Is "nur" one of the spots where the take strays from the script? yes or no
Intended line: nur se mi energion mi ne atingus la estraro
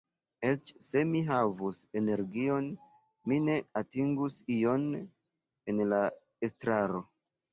yes